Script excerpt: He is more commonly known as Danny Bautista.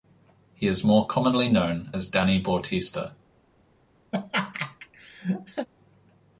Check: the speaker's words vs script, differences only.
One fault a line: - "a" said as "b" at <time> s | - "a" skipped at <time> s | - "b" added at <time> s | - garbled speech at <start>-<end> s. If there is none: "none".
none